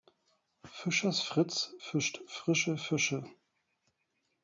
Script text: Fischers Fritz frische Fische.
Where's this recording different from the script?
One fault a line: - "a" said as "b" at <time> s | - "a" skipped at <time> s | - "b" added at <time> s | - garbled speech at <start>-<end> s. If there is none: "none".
- "fischt" added at 1.8 s